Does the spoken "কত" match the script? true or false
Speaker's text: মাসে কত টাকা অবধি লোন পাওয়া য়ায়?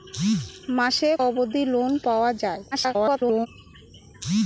false